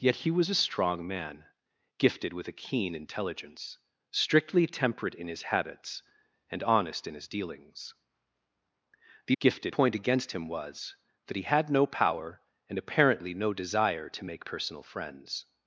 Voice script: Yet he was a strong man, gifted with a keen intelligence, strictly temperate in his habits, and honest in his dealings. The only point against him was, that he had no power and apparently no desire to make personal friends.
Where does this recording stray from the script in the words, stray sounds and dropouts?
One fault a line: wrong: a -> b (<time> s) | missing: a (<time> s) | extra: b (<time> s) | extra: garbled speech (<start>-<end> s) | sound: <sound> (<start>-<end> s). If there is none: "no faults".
wrong: only -> gifted (9.4 s)